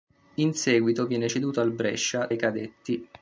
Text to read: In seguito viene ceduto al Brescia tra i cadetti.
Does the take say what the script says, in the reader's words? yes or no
no